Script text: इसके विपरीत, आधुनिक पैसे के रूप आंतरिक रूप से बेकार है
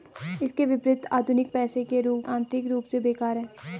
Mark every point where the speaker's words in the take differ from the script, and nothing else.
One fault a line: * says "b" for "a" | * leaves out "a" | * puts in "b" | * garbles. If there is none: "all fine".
all fine